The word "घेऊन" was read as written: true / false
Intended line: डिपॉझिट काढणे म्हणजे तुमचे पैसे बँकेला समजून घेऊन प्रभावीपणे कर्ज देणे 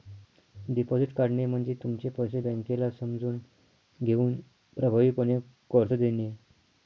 true